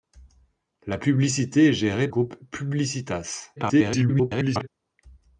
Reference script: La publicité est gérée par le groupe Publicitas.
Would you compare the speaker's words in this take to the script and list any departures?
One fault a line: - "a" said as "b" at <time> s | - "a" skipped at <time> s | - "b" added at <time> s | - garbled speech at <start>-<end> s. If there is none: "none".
- "par le" skipped at 2.1 s
- garbled speech at 3.6-4.7 s